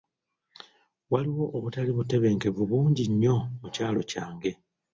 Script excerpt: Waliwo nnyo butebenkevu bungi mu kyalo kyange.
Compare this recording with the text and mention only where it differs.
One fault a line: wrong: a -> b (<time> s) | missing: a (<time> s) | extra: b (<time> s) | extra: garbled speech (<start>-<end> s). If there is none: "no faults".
wrong: nnyo -> obutali (1.6 s)
extra: nnyo (3.1 s)